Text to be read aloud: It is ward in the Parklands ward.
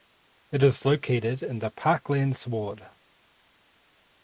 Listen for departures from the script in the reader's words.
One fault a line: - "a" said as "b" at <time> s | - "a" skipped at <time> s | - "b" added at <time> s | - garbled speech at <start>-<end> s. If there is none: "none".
- "ward" said as "located" at 0.8 s